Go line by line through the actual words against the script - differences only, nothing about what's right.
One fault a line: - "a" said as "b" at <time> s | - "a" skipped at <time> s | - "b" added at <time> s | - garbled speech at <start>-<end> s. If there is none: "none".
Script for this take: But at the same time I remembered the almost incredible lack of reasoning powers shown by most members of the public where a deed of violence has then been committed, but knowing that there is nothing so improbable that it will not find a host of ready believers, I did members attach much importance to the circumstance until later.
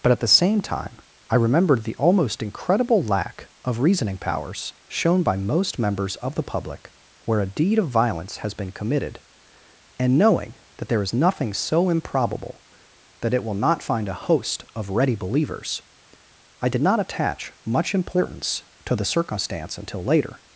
- "then" skipped at 8.5 s
- "but" said as "and" at 10.0 s
- "members" said as "not" at 16.8 s